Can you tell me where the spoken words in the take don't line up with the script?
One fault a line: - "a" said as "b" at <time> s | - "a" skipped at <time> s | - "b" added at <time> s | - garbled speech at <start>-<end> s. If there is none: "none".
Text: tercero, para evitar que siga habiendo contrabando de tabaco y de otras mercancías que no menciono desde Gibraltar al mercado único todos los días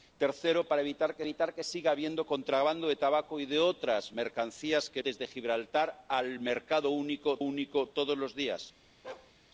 - "evitar que" added at 1.2 s
- "no menciono" skipped at 5.0 s
- "único" added at 7.4 s